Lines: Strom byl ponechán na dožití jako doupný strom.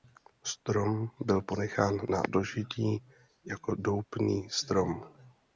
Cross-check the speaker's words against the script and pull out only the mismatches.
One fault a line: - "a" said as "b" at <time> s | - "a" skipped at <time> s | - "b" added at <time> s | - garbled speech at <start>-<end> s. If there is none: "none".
none